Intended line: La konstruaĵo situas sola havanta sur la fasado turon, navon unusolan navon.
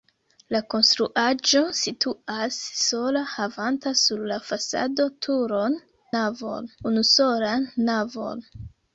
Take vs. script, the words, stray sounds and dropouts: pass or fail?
pass